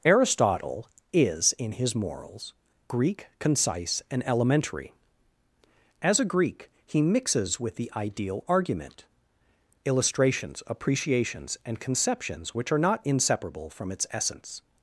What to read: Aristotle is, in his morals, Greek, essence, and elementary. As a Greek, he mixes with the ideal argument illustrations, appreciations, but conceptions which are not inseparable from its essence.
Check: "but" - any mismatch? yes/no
yes